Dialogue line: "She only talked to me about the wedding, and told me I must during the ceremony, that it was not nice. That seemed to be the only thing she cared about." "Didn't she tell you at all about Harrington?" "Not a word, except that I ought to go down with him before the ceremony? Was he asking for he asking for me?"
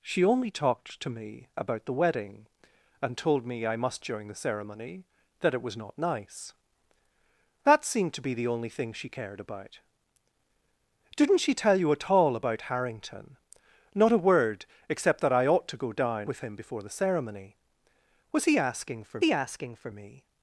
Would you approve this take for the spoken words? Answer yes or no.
yes